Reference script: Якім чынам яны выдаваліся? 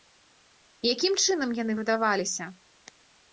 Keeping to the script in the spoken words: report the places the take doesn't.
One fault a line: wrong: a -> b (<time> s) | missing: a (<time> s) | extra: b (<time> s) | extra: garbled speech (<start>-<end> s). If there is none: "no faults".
no faults